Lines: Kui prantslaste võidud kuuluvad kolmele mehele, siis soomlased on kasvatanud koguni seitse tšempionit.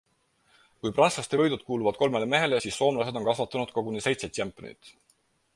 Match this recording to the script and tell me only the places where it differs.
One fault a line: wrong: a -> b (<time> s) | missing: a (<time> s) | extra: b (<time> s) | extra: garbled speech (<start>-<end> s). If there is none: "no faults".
no faults